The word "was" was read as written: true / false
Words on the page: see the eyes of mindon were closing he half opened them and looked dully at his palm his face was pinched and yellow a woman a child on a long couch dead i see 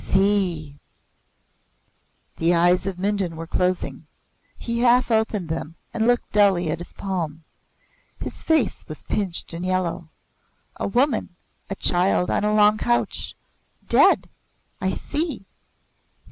true